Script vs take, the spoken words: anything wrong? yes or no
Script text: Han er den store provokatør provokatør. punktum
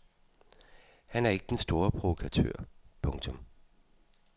yes